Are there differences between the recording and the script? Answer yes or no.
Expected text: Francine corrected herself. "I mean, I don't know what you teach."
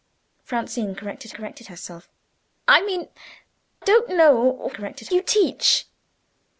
yes